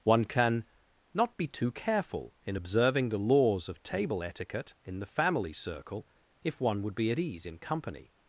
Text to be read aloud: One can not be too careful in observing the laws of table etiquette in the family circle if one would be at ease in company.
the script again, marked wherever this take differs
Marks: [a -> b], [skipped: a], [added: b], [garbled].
One can not be too careful in observing the laws of table etiquette in the family circle if one would be at ease in company.